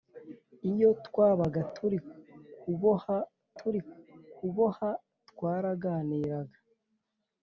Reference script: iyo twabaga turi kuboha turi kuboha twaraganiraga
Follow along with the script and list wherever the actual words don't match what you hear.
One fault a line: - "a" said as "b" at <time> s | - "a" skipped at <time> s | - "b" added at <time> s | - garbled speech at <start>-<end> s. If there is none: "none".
none